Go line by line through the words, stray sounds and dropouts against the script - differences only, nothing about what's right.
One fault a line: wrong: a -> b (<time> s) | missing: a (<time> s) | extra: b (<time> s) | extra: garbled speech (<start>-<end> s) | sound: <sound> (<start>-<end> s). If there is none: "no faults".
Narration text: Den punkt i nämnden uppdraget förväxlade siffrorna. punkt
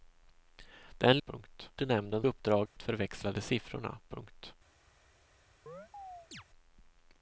sound: dropout (2.7-2.8 s)
sound: chirp (5.7-6.4 s)